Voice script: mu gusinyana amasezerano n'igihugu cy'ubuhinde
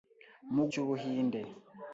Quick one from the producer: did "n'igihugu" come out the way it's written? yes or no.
no